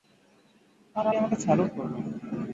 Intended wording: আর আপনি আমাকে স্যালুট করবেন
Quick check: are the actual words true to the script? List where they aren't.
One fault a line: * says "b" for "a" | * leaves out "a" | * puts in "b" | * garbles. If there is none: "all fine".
* leaves out "আপনি"